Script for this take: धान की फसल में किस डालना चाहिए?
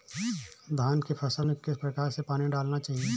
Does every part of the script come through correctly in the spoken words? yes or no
no